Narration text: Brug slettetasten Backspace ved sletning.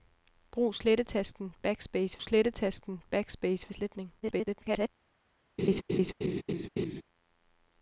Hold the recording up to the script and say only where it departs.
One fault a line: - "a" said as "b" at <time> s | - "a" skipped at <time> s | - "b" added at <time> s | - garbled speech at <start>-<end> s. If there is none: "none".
- "slettetasten Backspace" added at 2.2 s
- garbled speech at 4.2-4.9 s